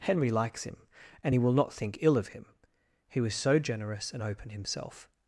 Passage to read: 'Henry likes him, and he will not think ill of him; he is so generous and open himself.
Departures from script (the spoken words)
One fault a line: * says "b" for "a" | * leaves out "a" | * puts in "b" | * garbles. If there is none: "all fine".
* says "was" for "is"